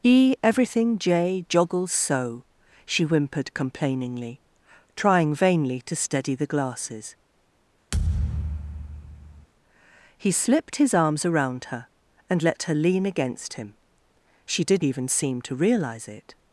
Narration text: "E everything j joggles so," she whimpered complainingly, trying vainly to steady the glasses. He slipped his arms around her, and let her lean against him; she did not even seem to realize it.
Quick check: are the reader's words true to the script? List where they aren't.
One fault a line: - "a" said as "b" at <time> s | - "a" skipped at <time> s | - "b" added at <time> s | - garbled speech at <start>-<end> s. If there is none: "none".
- "not" skipped at 14.8 s